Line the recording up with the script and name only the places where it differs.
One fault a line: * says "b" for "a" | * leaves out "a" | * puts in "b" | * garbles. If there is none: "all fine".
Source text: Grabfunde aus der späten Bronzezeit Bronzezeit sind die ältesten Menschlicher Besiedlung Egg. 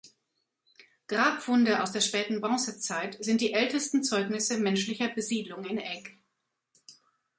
* leaves out "Bronzezeit"
* puts in "Zeugnisse"
* puts in "in"